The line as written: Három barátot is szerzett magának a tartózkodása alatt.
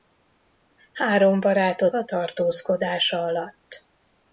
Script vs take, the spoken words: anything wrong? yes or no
yes